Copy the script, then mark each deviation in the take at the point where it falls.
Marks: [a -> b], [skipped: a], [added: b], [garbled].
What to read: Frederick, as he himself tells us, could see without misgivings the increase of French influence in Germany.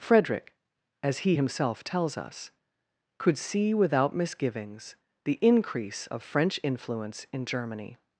Frederick, as he himself tells us, could see without misgivings the increase of French influence in Germany.